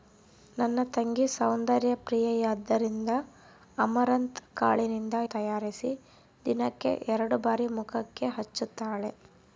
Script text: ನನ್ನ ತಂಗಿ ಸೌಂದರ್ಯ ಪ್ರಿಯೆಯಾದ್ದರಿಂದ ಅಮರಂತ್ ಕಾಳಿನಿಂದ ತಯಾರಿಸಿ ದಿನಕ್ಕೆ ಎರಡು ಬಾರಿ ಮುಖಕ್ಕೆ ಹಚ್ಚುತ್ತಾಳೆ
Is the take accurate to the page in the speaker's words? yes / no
yes